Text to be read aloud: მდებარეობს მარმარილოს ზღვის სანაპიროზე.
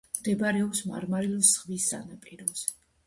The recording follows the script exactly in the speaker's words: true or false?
true